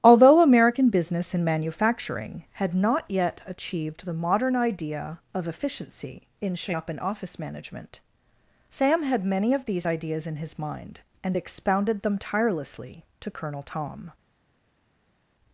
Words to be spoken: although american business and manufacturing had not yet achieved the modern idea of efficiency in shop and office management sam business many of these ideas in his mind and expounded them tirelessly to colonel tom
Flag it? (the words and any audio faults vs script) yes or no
yes